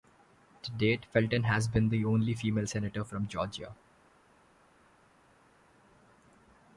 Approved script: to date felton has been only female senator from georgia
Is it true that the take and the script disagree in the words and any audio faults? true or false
true